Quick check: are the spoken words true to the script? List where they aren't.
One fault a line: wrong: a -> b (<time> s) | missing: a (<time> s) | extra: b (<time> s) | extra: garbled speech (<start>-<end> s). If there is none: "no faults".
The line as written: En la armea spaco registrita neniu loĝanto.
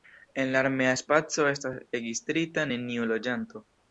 extra: estas (1.6 s)